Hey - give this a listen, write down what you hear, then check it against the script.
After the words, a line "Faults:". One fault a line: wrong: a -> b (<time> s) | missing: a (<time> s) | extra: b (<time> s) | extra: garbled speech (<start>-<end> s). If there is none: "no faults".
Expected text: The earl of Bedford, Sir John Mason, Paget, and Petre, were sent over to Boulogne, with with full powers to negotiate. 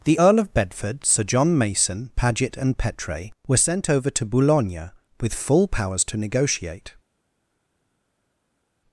The earl of Bedford, Sir John Mason, Paget, and Petre, were sent over to Boulogne, with full powers to negotiate.
Faults:
missing: with (5.3 s)